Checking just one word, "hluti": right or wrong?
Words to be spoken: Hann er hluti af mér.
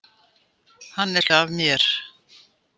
wrong